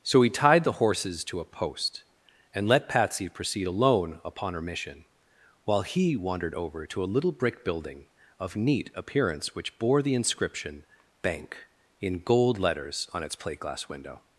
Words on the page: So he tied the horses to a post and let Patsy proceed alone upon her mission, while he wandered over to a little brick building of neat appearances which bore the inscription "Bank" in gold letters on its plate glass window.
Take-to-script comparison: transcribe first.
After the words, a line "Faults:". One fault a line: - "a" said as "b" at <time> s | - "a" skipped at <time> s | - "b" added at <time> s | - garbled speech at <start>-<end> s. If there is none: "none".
So he tied the horses to a post and let Patsy proceed alone upon her mission, while he wandered over to a little brick building of neat appearance which bore the inscription "Bank" in gold letters on its plate glass window.
Faults:
- "appearances" said as "appearance" at 9.0 s